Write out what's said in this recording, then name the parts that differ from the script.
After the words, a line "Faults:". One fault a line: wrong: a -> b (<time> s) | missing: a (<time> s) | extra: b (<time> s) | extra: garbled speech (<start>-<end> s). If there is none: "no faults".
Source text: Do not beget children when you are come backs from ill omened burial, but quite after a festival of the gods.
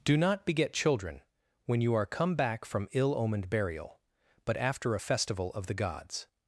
Do not beget children when you are come back from ill omened burial, but after a festival of the gods.
Faults:
wrong: backs -> back (2.3 s)
missing: quite (4.6 s)